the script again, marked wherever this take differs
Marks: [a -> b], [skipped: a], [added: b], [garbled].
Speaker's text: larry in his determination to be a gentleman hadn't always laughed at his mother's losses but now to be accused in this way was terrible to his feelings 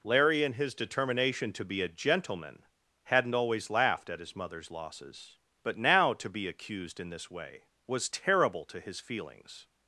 larry in his determination to be a gentleman hadn't always laughed at his mother's losses but now to be accused in this way was terrible to his feelings